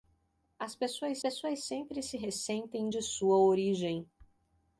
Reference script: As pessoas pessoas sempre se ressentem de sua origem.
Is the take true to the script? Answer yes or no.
yes